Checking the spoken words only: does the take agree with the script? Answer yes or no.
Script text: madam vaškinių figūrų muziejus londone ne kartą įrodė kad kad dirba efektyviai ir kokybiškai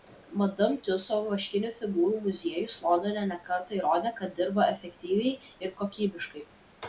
no